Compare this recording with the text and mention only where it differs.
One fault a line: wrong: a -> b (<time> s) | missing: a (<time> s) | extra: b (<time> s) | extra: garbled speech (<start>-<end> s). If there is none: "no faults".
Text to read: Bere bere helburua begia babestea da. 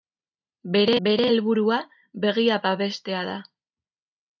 no faults